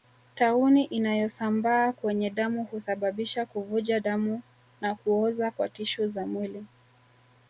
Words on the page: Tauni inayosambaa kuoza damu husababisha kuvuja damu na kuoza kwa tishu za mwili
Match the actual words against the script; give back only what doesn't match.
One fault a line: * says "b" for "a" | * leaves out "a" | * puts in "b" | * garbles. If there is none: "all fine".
* says "kwenye" for "kuoza"